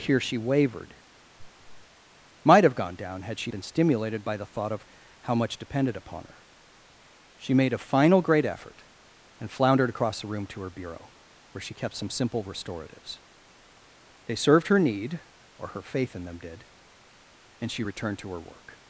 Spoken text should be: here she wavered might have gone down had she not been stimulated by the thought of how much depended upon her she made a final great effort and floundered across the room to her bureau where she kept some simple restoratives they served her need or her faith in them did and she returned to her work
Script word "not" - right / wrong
wrong